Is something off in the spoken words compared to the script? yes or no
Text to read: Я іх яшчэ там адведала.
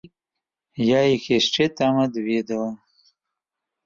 no